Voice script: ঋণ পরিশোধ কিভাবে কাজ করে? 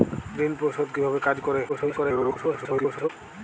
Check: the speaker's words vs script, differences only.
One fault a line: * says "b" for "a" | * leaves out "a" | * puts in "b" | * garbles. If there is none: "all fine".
* garbles